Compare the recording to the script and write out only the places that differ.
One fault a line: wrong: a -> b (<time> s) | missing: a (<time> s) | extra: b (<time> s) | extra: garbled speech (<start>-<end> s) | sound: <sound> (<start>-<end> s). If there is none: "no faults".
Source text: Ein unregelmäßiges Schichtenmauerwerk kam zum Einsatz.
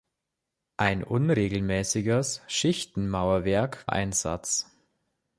missing: kam zum (3.9 s)